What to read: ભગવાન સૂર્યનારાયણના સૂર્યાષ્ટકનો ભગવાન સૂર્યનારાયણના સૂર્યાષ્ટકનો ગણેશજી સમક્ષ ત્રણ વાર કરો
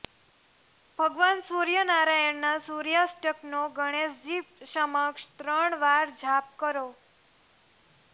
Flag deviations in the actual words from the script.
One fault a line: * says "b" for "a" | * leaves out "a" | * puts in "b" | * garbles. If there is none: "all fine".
* leaves out "ભગવાન સૂર્યનારાયણના સૂર્યાષ્ટકનો"
* puts in "જાપ"